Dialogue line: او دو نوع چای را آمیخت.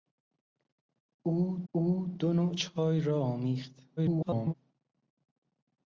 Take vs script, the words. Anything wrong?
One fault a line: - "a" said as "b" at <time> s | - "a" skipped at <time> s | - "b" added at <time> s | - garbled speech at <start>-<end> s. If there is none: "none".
- "او" added at 1.7 s
- garbled speech at 4.0-4.5 s